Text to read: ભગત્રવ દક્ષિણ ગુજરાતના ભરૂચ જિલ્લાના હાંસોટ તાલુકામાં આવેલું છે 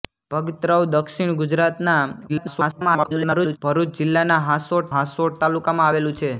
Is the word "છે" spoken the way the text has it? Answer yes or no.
yes